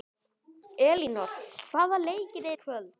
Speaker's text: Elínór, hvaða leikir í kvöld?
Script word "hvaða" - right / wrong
right